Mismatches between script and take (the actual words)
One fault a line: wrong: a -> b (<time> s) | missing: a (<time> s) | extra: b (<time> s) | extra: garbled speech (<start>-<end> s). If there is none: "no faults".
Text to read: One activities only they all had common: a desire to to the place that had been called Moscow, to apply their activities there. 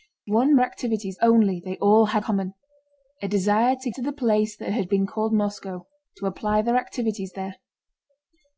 no faults